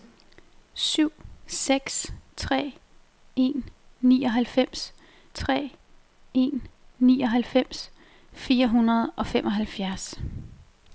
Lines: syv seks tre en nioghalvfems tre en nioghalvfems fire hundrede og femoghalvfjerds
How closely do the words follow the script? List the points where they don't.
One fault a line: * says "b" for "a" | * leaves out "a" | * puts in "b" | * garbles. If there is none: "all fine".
all fine